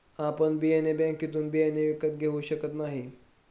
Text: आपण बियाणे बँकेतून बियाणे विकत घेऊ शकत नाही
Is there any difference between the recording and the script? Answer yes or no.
no